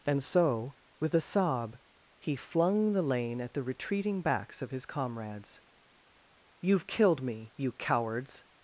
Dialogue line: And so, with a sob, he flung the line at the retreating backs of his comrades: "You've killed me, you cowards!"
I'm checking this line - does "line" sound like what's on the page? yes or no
no